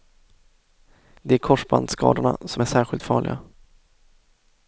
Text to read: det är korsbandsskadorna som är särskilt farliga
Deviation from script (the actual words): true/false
false